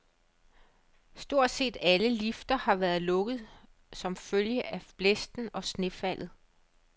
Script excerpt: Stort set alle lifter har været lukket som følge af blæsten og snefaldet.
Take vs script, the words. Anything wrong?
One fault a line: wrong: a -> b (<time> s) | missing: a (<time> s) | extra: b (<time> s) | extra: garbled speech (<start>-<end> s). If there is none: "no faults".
no faults